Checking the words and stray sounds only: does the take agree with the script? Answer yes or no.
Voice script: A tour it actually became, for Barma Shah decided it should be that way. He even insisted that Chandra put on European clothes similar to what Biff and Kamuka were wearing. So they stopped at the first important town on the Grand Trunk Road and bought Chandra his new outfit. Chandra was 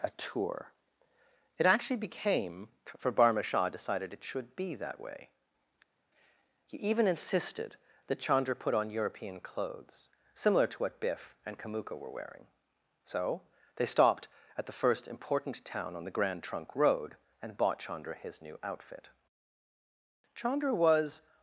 yes